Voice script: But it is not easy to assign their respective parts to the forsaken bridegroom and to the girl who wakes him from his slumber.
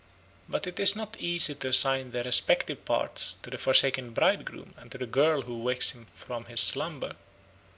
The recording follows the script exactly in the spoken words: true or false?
true